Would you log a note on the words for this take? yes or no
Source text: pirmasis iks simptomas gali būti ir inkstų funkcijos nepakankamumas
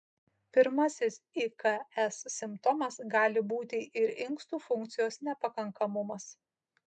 no